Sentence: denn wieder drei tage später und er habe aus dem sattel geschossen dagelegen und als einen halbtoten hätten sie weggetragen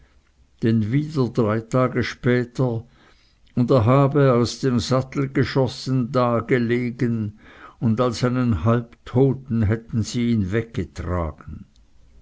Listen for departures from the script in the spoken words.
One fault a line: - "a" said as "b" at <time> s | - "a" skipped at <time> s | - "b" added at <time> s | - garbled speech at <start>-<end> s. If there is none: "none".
- "ihn" added at 10.3 s